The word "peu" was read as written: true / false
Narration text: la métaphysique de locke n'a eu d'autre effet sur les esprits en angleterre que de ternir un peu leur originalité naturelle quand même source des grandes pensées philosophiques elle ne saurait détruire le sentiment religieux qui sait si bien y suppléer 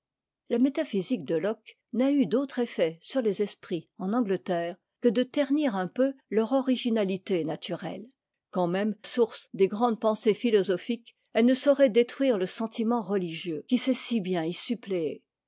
true